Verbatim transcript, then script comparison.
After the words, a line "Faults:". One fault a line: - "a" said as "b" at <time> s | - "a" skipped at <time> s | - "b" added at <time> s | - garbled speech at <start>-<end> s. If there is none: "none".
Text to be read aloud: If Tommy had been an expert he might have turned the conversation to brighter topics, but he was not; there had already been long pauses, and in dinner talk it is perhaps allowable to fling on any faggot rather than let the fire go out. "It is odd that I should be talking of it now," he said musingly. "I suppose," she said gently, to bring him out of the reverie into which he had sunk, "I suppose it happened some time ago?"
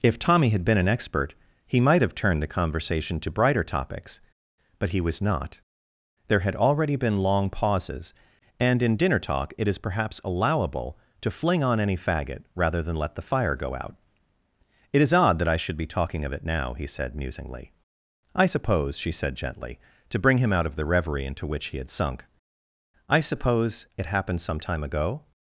If Tommy had been an expert he might have turned the conversation to brighter topics, but he was not; there had already been long pauses, and in dinner talk it is perhaps allowable to fling on any faggot rather than let the fire go out. "It is odd that I should be talking of it now," he said musingly. "I suppose," she said gently, to bring him out of the reverie into which he had sunk, "I suppose it happened some time ago?"
Faults:
none